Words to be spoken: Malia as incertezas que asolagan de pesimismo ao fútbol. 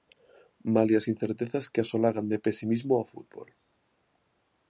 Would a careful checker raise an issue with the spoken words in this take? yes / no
no